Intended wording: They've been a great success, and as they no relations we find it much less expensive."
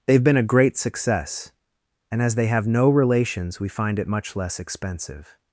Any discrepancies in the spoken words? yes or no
yes